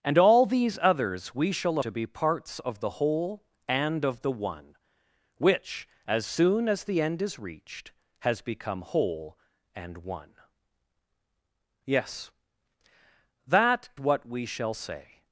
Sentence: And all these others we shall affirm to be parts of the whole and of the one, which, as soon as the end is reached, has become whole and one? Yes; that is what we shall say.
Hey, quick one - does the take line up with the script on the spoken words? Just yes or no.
no